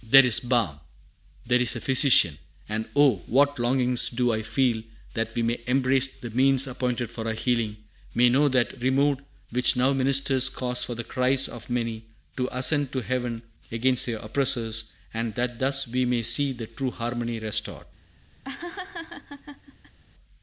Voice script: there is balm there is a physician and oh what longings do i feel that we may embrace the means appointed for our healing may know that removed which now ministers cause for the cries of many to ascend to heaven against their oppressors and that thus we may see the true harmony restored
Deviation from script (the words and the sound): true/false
true